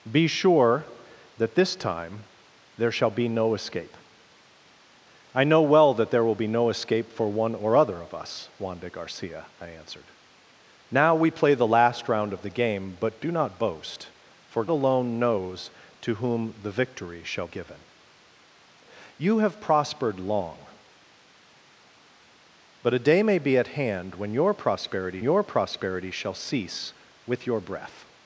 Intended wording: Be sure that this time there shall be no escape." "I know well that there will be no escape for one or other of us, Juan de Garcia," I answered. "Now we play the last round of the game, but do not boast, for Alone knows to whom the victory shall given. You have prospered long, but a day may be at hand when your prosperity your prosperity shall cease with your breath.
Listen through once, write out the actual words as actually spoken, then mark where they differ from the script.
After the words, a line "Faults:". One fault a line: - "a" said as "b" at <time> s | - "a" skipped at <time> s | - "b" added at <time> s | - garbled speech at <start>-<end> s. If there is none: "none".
Be sure that this time there shall be no escape." "I know well that there will be no escape for one or other of us, Juan de Garcia," I answered. "Now we play the last round of the game, but do not boast, for Alone knows to whom the victory shall given. You have prospered long, but a day may be at hand when your prosperity your prosperity shall cease with your breath.
Faults:
none